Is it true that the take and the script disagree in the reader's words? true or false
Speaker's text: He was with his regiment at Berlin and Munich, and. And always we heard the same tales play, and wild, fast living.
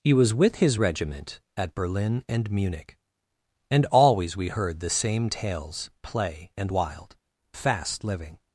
true